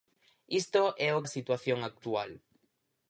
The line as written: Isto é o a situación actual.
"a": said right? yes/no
yes